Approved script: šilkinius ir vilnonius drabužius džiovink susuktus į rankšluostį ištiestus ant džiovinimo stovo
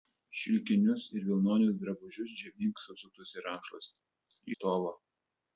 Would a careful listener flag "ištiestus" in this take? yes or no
yes